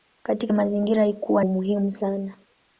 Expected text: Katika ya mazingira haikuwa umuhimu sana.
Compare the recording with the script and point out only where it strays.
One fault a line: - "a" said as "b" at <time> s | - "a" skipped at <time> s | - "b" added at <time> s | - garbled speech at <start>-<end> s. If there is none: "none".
none